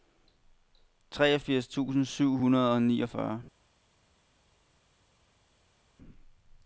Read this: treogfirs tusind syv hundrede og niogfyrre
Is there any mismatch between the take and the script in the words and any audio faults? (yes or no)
no